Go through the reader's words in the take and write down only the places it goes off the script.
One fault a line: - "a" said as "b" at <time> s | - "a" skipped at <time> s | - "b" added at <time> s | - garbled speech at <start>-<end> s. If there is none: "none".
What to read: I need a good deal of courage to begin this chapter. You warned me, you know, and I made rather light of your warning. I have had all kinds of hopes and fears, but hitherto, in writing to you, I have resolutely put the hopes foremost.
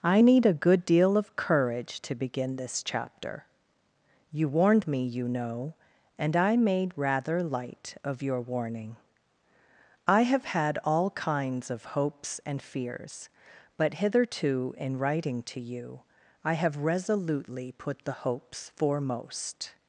none